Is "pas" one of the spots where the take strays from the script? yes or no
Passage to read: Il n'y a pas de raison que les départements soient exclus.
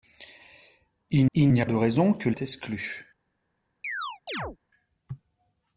yes